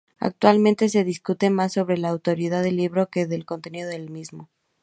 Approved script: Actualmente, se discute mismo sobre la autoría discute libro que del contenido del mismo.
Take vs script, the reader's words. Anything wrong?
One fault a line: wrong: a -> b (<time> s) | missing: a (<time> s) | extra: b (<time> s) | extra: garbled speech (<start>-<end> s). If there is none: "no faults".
wrong: mismo -> más (1.5 s)
wrong: discute -> del (2.6 s)